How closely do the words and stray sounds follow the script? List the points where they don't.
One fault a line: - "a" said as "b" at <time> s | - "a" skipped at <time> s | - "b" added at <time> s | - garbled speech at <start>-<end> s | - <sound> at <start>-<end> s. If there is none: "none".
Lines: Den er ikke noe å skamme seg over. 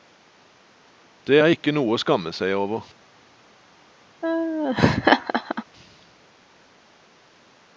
- "Den" said as "Det" at 1.3 s
- laugh at 4.2-5.6 s